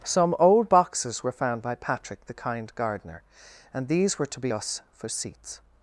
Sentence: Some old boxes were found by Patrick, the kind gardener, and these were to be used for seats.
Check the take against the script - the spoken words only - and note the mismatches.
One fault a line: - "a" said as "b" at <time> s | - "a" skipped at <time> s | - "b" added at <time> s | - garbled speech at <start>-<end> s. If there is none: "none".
- "used" said as "us" at 4.5 s